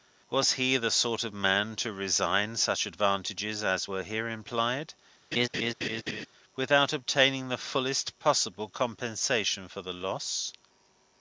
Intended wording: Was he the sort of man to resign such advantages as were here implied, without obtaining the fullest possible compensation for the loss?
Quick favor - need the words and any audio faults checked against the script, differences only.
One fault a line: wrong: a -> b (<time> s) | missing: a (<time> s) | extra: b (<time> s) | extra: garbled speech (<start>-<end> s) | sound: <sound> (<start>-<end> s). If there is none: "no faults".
sound: laugh (5.3-6.3 s)